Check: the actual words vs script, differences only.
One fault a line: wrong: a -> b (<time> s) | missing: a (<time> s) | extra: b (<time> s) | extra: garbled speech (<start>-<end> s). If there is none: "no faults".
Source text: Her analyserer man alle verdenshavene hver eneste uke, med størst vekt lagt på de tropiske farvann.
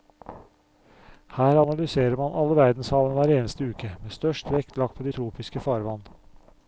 no faults